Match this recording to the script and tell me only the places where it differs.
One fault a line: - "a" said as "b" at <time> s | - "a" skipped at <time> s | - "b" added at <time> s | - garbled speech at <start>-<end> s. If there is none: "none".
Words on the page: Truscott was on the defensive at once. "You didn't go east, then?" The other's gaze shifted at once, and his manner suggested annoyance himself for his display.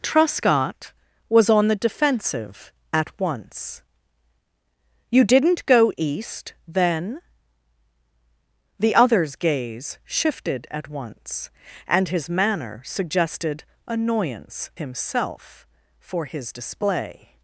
none